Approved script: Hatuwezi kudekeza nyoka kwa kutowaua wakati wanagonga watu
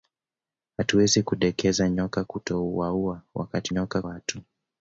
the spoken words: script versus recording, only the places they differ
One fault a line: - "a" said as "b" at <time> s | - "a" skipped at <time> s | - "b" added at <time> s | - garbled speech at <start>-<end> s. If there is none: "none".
- "kwa" skipped at 2.2 s
- "wanagonga" said as "nyoka" at 3.7 s